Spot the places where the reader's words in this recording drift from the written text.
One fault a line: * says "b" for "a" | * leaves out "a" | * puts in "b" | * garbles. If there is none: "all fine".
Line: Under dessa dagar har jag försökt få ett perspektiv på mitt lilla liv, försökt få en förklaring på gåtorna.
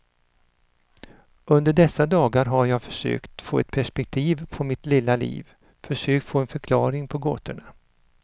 all fine